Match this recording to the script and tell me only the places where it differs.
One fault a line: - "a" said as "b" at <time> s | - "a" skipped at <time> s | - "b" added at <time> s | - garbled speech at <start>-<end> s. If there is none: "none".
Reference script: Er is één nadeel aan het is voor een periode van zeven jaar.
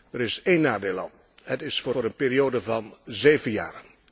- "voor" added at 1.9 s